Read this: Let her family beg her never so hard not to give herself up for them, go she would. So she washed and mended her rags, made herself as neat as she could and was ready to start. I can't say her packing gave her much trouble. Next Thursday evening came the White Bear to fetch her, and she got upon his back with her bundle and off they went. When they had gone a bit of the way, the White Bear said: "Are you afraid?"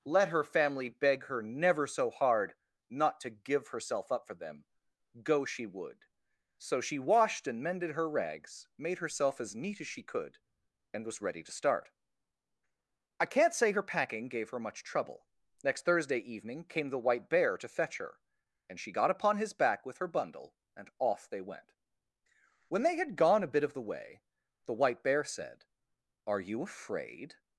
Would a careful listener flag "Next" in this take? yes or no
no